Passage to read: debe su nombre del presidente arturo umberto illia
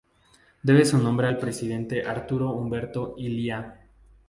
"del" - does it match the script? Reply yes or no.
no